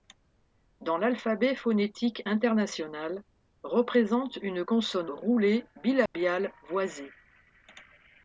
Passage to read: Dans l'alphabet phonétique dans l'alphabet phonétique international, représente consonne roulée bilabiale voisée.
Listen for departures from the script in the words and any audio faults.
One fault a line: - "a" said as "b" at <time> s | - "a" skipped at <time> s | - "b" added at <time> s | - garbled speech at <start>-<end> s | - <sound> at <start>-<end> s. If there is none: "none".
- "dans l'alphabet phonétique" skipped at 2.2 s
- "une" added at 4.4 s
- dropout at 6.1-6.1 s